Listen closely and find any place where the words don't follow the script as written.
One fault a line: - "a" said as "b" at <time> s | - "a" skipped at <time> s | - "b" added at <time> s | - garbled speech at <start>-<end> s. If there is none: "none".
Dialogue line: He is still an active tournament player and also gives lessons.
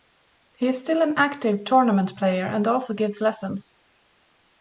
none